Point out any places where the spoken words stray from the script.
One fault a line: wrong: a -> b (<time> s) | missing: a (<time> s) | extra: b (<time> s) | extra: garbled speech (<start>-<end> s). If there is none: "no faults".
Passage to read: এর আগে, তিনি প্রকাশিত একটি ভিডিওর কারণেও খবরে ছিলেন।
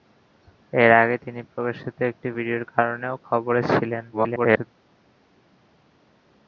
extra: garbled speech (4.1-4.7 s)